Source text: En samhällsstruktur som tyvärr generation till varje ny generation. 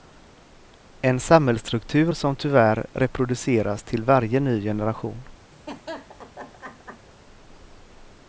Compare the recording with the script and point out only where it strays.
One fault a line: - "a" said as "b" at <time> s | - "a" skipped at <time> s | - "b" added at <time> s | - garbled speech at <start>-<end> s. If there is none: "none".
- "generation" said as "reproduceras" at 2.9 s